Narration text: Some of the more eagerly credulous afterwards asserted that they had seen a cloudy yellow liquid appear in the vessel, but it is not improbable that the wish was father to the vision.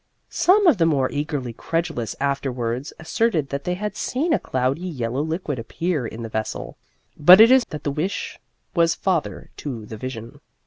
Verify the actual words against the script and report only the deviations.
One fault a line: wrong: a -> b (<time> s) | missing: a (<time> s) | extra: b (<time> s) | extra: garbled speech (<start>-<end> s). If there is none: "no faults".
missing: not improbable (7.7 s)